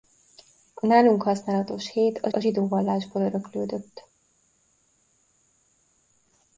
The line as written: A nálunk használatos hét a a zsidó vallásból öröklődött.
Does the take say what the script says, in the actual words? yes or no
yes